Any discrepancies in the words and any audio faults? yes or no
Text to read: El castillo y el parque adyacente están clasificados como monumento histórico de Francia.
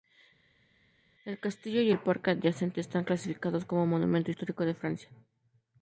no